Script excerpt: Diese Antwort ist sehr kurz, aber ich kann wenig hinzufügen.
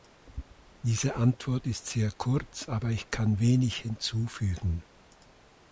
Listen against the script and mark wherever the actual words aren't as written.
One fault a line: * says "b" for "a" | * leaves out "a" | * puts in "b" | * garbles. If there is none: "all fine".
all fine